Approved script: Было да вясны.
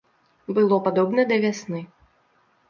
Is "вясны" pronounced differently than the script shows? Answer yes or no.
no